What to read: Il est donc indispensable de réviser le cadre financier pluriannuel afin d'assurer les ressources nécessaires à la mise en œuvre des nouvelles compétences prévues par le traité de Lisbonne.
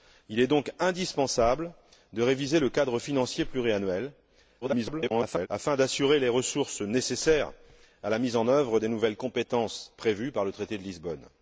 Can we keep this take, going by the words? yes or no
no